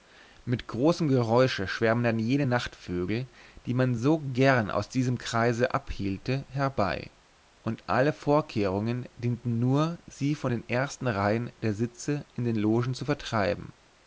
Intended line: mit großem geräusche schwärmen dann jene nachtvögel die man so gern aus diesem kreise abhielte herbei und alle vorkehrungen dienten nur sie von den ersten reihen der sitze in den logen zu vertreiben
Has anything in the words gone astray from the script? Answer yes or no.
no